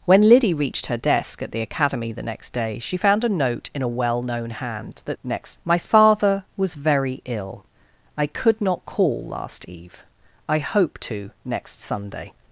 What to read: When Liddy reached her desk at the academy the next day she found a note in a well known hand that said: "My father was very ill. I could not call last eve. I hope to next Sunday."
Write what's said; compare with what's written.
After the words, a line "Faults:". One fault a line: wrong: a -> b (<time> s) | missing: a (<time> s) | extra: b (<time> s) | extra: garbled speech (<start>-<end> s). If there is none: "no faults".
When Liddy reached her desk at the academy the next day she found a note in a well known hand that next: "My father was very ill. I could not call last eve. I hope to next Sunday."
Faults:
wrong: said -> next (5.2 s)